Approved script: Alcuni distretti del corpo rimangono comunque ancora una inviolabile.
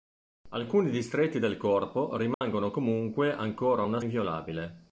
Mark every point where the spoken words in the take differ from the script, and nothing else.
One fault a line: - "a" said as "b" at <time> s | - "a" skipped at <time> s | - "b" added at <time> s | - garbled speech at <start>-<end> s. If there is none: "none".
none